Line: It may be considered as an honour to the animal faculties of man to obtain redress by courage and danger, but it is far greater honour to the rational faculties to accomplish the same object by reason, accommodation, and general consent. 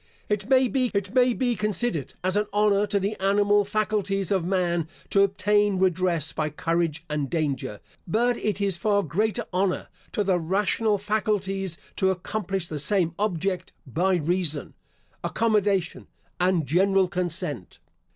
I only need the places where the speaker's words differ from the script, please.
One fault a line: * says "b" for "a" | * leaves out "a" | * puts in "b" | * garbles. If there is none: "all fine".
* puts in "it may be"